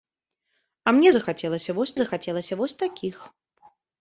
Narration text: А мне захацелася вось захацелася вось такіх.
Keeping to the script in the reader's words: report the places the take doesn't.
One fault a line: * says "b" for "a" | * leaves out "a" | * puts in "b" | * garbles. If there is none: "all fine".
all fine